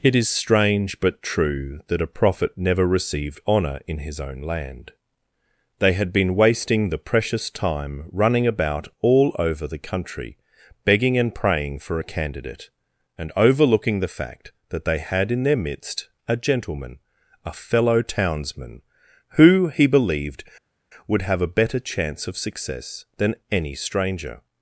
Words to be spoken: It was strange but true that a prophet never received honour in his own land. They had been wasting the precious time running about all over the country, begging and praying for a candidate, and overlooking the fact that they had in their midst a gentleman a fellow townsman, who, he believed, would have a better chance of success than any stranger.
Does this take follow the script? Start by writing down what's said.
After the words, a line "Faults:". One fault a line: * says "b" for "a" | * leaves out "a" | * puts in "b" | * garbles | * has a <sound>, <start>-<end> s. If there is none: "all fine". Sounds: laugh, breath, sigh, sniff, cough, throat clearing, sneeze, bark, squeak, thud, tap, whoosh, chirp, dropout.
It is strange but true that a prophet never received honour in his own land. They had been wasting the precious time running about all over the country, begging and praying for a candidate, and overlooking the fact that they had in their midst a gentleman a fellow townsman, who, he believed, would have a better chance of success than any stranger.
Faults:
* says "is" for "was"